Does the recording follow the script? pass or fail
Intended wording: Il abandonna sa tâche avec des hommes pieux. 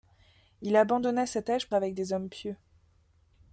pass